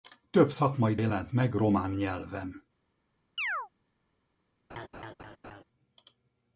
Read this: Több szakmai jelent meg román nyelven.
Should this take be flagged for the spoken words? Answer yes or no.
no